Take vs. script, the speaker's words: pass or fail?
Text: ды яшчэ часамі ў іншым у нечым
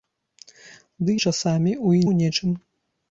fail